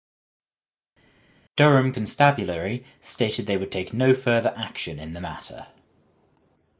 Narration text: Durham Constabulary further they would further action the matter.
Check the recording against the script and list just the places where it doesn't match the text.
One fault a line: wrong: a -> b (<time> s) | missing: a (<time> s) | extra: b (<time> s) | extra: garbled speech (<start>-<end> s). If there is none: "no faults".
wrong: further -> stated (3.0 s)
extra: take no (3.7 s)
extra: in (5.0 s)